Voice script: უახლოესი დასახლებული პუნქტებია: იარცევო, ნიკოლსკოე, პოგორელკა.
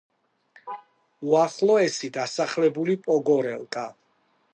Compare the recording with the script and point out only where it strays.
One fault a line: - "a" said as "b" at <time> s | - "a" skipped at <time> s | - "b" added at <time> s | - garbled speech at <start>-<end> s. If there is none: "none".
- "პუნქტებია იარცევო ნიკოლსკოე" skipped at 3.0 s